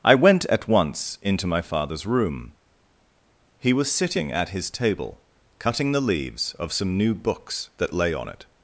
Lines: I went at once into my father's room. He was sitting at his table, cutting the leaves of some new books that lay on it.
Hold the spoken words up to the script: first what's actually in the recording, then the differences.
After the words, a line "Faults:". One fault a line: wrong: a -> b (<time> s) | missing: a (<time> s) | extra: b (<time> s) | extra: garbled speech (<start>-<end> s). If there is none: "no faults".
I went at once into my father's room. He was sitting at his table, cutting the leaves of some new books that lay on it.
Faults:
no faults